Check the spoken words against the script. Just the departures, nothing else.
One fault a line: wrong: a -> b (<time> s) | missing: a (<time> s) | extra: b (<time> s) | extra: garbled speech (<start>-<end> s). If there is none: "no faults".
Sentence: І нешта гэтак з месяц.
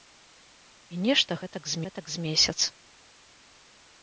extra: гэтак з (1.8 s)